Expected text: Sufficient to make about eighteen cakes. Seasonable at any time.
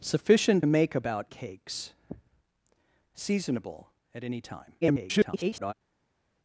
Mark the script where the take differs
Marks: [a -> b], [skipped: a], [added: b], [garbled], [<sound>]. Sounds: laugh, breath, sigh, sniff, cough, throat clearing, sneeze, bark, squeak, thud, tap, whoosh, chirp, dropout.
Sufficient [skipped: to] make about [skipped: eighteen] cakes. Seasonable at any time. [garbled]